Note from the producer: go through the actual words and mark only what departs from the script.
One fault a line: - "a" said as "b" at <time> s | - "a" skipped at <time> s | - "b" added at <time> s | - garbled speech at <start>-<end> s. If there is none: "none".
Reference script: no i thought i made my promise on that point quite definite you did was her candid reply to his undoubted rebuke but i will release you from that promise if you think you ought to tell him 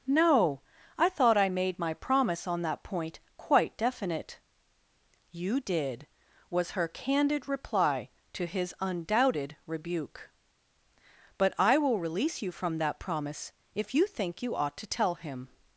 none